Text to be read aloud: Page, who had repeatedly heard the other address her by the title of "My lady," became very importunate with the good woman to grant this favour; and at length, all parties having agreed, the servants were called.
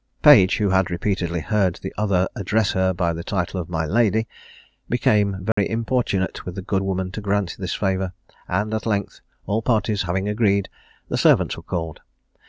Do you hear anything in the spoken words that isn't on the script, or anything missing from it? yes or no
no